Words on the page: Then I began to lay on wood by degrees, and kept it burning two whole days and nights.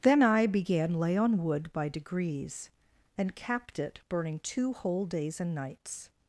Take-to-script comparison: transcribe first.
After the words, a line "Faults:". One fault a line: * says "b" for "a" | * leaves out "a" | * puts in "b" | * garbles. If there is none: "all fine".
Then I began lay on wood by degrees, and capped it burning two whole days and nights.
Faults:
* leaves out "to"
* says "capped" for "kept"